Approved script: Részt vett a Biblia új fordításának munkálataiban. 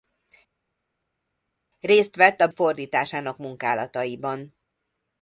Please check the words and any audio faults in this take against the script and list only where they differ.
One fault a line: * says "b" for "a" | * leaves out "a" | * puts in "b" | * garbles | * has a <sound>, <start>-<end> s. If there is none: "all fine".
* leaves out "Biblia új"